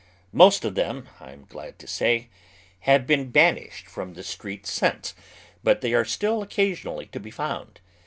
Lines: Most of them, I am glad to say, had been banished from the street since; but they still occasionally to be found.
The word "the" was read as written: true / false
true